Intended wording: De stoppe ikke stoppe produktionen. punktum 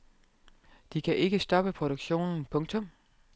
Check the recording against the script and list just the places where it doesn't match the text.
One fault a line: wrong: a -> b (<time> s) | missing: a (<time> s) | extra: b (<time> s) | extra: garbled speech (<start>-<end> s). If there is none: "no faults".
wrong: stoppe -> kan (1.0 s)